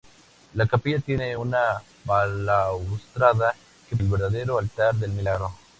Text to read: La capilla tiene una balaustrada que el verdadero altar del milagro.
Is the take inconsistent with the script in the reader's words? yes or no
no